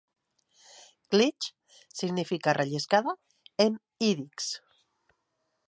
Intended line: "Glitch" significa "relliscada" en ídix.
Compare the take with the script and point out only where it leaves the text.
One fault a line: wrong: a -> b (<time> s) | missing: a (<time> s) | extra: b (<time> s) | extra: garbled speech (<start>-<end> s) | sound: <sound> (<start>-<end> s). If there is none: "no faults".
no faults